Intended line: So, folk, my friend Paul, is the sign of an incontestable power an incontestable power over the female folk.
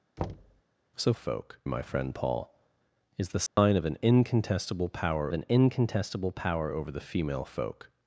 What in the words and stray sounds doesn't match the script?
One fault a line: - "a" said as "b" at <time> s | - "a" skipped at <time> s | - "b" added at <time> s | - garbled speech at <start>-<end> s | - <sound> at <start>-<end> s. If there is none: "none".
- thud at 0.2-0.6 s
- dropout at 3.5-3.6 s